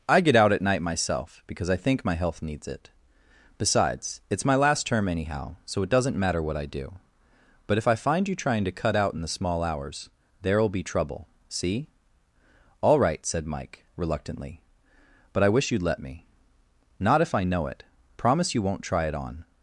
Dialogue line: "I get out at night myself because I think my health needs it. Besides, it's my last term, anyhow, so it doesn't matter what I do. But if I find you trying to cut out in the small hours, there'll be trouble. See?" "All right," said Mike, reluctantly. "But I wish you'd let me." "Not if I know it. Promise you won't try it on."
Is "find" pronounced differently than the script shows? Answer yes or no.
no